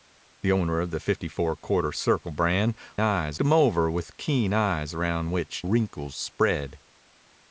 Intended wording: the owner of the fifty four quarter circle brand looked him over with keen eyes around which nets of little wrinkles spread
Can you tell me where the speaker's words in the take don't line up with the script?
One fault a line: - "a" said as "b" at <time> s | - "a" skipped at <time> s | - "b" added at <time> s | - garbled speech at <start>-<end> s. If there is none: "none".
- "looked" said as "eyes" at 3.0 s
- "nets of little" skipped at 5.6 s